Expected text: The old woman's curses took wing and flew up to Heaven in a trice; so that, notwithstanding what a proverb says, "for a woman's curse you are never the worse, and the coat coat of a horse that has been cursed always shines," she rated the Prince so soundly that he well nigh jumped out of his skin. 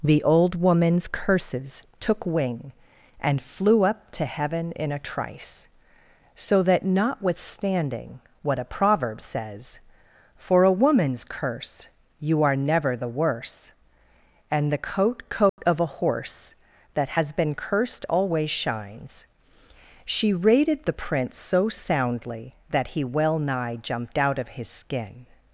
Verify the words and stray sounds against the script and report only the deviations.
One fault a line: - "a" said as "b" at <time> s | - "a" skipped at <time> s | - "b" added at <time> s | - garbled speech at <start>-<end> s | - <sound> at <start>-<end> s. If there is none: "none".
- dropout at 15.5-15.6 s